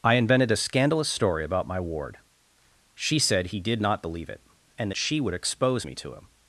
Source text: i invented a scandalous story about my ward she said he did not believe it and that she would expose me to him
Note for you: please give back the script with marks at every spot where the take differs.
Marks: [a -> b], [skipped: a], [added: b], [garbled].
i invented a scandalous story about my ward she said he did not believe it and that she would expose me to him